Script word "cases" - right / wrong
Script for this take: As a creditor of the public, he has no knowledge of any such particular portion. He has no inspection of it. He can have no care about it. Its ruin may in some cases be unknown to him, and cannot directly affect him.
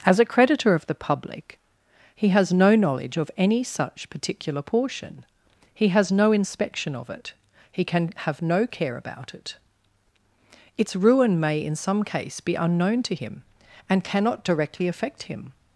wrong